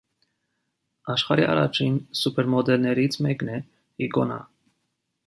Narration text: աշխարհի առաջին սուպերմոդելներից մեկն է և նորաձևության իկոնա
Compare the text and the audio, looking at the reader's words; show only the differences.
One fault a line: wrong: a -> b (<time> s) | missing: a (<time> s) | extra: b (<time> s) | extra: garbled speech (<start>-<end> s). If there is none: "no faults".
missing: և նորաձևության (3.6 s)